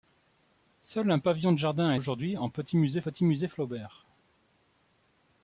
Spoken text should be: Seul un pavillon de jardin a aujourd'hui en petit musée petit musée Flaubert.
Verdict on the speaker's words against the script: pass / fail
pass